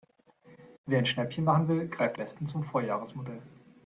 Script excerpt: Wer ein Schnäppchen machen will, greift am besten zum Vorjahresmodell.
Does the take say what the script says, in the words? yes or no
no